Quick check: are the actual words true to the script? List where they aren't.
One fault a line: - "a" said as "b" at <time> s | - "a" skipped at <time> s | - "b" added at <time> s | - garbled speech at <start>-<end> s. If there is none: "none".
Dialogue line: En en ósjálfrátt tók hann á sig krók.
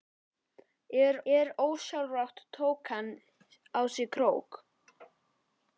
none